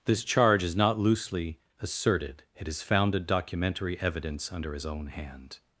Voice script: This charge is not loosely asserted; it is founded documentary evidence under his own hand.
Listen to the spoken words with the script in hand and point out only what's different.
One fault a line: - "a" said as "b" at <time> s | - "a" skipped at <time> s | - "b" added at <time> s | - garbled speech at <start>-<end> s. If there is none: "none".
none